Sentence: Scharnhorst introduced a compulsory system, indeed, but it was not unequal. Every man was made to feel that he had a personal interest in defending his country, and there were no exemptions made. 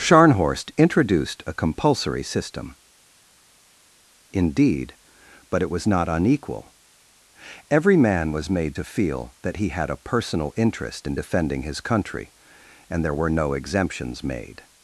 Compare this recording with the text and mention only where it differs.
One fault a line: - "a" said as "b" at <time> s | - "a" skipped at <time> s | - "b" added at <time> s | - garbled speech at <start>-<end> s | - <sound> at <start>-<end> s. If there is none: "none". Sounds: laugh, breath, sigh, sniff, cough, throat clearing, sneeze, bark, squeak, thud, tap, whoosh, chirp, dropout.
none